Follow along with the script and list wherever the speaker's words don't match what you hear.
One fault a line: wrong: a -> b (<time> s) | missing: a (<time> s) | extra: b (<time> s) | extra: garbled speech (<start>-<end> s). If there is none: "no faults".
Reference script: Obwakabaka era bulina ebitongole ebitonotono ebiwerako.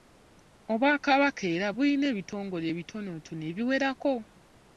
no faults